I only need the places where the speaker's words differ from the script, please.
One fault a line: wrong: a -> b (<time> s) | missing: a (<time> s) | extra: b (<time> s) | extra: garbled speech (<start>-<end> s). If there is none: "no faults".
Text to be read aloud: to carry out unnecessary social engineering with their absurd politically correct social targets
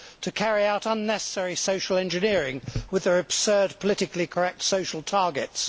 no faults